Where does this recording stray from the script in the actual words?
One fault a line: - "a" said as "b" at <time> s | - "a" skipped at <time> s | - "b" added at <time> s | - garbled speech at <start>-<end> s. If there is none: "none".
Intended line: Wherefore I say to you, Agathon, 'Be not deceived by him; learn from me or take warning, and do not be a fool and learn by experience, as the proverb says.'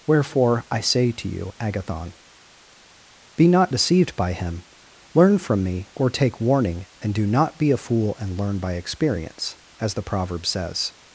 none